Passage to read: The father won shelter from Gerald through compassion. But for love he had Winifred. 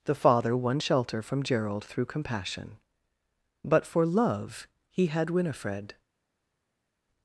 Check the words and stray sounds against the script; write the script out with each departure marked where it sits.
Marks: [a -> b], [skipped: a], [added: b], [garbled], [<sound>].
The father won shelter from Gerald through compassion. But for love he had Winifred.